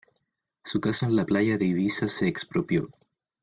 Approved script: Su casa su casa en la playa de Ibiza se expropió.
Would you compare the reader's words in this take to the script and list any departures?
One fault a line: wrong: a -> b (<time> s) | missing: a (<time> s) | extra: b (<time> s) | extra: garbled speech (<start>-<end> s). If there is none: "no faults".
missing: su casa (1.1 s)